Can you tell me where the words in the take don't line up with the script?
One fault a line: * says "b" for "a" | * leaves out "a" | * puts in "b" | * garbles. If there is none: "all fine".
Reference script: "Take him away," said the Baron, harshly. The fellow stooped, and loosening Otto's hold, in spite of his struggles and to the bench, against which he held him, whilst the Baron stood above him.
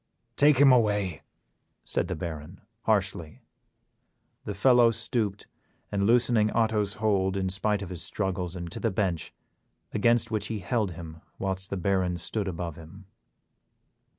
all fine